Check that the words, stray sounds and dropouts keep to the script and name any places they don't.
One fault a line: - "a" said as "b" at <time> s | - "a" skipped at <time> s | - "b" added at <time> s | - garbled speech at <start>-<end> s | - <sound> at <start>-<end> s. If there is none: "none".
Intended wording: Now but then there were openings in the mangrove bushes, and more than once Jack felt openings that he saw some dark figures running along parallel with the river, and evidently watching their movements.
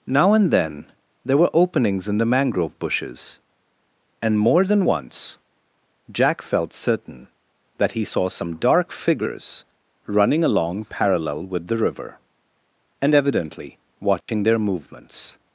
- "but" said as "and" at 0.3 s
- "openings" said as "certain" at 6.7 s
- dropout at 14.2-14.3 s